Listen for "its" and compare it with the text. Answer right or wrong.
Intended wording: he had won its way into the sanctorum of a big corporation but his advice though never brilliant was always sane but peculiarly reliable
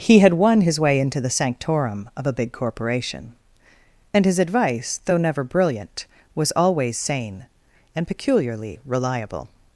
wrong